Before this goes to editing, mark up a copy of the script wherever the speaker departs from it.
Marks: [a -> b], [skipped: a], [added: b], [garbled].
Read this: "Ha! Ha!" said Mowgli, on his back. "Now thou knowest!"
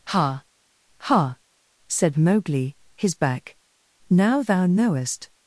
"Ha! Ha!" said Mowgli, [skipped: on] his back. "Now thou knowest!"